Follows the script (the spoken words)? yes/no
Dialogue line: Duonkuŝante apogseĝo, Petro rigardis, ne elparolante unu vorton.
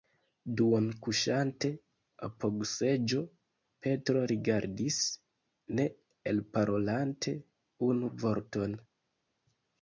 yes